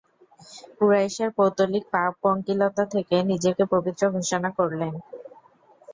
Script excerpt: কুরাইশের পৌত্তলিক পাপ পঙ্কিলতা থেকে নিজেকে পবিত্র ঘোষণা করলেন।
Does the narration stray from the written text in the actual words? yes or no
no